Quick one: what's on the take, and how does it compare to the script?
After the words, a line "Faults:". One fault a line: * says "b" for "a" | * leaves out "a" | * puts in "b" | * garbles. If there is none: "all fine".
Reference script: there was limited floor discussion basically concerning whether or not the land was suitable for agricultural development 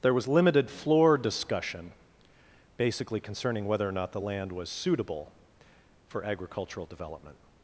there was limited floor discussion basically concerning whether or not the land was suitable for agricultural development
Faults:
all fine